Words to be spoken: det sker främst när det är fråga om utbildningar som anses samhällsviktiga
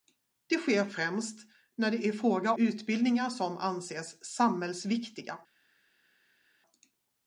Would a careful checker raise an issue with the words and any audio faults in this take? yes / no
yes